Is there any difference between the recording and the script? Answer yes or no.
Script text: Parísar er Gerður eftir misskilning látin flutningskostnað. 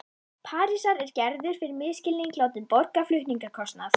yes